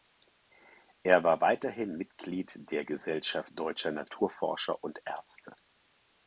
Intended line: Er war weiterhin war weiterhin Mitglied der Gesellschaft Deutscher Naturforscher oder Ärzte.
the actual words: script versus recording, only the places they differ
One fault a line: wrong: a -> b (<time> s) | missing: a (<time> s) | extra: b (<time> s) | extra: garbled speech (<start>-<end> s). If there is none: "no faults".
missing: war weiterhin (1.9 s)
wrong: oder -> und (4.8 s)